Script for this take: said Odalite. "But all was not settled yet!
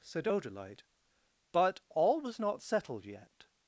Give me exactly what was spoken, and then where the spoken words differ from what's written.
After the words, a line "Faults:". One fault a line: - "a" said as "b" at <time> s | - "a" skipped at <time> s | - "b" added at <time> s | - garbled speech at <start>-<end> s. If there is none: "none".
said Odalite. "But all was not settled yet!
Faults:
none